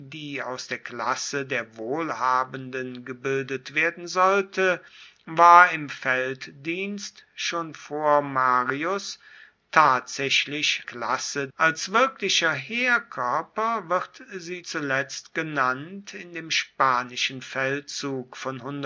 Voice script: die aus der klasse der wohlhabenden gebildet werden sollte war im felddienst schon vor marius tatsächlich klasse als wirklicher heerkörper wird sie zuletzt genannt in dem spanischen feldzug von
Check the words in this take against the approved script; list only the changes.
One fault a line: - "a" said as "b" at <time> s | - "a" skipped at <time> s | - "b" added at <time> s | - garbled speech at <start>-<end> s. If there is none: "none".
none